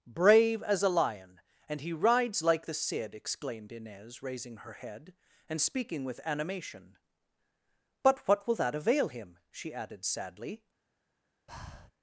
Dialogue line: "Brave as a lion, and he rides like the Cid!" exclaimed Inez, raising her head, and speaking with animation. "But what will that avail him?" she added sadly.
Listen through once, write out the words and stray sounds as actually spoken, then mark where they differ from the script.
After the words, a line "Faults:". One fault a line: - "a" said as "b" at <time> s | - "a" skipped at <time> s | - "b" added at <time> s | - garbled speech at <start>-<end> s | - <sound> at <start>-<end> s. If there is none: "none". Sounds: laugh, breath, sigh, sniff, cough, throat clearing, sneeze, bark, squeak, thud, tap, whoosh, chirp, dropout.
"Brave as a lion, and he rides like the Cid!" exclaimed Inez, raising her head, and speaking with animation. "But what will that avail him?" she added sadly.
Faults:
- breath at 11.5-11.9 s